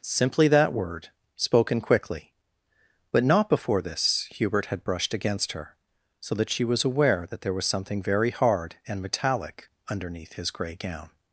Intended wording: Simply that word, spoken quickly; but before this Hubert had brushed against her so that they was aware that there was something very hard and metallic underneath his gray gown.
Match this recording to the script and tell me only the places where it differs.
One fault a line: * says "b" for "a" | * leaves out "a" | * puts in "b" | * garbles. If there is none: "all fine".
* puts in "not"
* says "she" for "they"